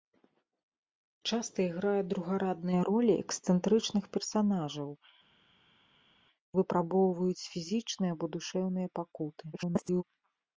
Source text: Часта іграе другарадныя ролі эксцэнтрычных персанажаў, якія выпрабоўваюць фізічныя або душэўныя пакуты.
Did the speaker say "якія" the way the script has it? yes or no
no